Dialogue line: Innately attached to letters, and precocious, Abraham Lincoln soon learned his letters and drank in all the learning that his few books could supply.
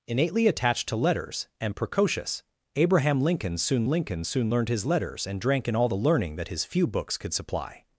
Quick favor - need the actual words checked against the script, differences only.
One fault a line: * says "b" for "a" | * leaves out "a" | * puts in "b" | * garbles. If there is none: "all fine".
* puts in "Lincoln soon"